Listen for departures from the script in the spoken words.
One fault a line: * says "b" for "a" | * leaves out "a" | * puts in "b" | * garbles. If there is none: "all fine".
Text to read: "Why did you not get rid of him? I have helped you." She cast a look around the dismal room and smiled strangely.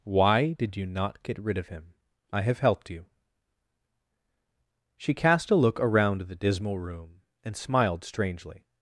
all fine